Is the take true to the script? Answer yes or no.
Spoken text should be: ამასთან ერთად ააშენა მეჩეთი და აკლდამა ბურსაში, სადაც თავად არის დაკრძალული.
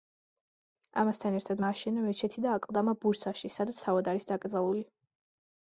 yes